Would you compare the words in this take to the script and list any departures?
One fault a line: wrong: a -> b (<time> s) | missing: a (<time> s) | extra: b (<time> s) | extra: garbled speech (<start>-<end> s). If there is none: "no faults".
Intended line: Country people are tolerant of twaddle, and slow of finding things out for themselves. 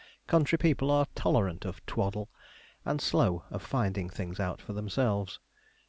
no faults